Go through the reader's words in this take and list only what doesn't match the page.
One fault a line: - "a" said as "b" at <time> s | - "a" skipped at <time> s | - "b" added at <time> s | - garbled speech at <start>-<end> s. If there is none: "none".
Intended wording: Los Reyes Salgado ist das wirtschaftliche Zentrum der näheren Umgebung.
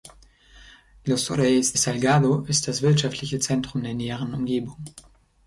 none